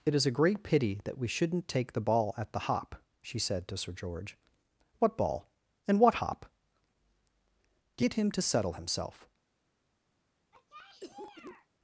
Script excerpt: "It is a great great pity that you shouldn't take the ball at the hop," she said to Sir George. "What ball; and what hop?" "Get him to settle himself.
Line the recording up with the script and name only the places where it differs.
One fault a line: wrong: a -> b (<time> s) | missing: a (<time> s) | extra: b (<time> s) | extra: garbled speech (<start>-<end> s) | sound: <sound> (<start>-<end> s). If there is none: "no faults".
missing: great (0.6 s)
wrong: you -> we (1.2 s)
sound: cough (10.5-11.7 s)